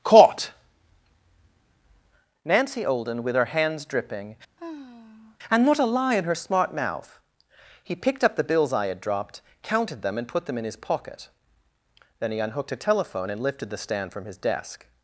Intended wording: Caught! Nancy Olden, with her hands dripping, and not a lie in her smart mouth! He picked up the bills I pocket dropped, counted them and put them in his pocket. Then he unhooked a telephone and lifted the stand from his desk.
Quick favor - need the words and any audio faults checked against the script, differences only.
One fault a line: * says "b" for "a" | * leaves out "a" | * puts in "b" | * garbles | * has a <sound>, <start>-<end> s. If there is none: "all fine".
* has a sigh, 4.6-5.4 s
* says "had" for "pocket"